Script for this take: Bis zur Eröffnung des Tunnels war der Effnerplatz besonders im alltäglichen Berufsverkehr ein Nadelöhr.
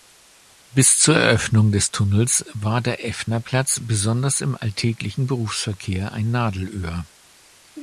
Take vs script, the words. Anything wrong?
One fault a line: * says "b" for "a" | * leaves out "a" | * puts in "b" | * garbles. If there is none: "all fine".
all fine